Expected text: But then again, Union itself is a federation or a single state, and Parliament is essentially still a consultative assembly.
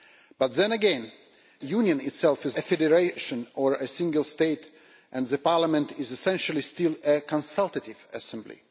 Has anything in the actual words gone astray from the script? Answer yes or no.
no